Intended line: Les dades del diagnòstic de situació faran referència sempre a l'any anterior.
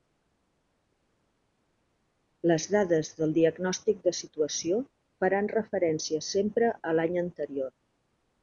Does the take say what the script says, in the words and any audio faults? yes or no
yes